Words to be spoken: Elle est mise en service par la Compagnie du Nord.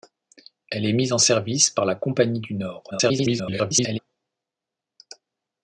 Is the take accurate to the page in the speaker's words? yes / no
no